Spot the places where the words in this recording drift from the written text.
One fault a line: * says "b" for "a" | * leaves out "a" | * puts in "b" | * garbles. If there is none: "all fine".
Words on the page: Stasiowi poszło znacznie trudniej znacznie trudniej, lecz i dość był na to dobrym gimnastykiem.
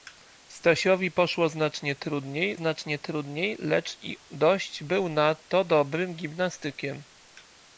all fine